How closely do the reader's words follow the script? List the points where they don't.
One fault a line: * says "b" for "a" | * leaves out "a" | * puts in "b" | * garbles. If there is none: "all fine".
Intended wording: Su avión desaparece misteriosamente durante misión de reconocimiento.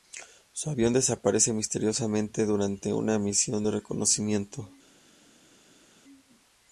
* puts in "una"